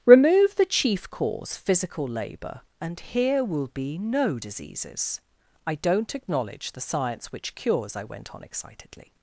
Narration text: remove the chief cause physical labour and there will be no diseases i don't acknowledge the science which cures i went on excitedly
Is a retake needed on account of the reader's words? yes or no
yes